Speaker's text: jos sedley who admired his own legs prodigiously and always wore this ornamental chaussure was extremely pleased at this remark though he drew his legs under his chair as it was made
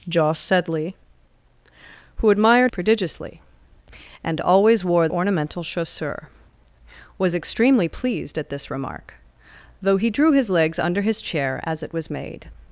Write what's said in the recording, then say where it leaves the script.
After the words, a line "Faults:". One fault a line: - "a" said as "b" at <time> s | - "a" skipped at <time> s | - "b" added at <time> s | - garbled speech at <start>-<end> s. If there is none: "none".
jos sedley who admired prodigiously and always wore ornamental chaussure was extremely pleased at this remark though he drew his legs under his chair as it was made
Faults:
- "his own legs" skipped at 2.7 s
- "this" skipped at 5.1 s